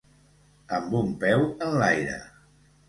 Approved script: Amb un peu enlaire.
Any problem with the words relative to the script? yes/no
no